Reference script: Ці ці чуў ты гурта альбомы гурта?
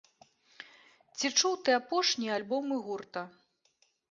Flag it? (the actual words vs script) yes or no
yes